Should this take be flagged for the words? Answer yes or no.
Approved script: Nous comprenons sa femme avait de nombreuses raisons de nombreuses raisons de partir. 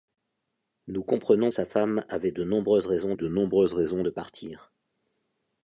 no